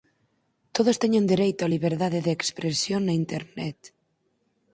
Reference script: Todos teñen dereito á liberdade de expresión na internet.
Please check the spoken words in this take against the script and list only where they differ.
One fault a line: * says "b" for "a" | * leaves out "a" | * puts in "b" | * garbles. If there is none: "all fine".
all fine